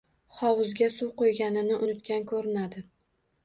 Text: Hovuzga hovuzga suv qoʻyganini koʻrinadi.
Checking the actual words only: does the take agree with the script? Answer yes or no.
no